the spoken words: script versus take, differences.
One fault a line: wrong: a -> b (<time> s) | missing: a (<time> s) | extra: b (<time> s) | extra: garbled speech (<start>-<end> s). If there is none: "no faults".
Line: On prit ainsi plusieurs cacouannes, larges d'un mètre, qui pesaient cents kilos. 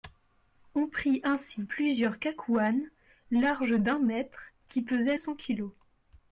no faults